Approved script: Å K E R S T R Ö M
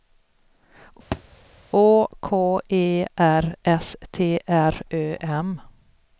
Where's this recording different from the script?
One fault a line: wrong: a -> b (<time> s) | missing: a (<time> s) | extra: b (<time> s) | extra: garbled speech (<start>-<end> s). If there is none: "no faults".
no faults